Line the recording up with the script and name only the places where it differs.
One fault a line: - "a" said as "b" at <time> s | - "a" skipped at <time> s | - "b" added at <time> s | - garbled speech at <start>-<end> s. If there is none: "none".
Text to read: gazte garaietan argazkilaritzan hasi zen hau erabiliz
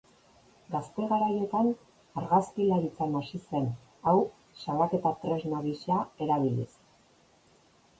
- "salaketa tresna gisa" added at 4.7 s